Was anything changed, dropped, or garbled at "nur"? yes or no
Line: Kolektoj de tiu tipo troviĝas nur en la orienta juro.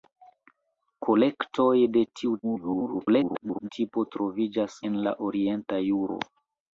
yes